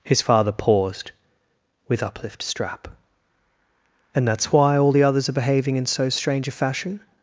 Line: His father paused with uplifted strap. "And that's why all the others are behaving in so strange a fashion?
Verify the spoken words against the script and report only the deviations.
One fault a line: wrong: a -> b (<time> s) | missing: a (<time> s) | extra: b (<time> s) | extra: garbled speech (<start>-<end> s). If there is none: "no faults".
wrong: uplifted -> uplift (2.0 s)